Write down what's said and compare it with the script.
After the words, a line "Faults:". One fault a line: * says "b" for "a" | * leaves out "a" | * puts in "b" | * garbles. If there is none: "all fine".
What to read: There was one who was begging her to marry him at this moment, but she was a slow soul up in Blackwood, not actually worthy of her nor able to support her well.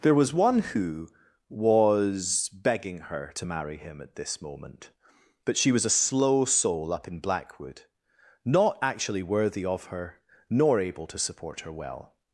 There was one who was begging her to marry him at this moment, but she was a slow soul up in Blackwood, not actually worthy of her nor able to support her well.
Faults:
all fine